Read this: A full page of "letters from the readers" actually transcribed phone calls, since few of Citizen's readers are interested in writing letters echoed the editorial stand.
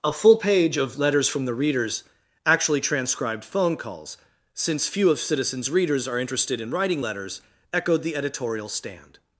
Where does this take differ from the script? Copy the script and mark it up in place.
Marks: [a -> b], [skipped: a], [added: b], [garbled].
A full page of "letters from the readers" actually transcribed phone calls, since few of Citizen's readers are interested in writing letters echoed the editorial stand.